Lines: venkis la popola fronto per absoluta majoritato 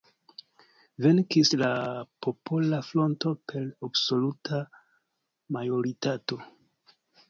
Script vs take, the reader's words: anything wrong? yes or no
no